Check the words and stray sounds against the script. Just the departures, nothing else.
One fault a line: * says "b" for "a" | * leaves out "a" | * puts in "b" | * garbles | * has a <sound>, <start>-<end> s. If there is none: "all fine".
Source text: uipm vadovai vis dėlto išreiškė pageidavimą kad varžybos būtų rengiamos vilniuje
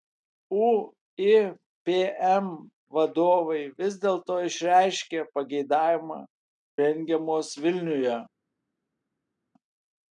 * leaves out "kad varžybos būtų"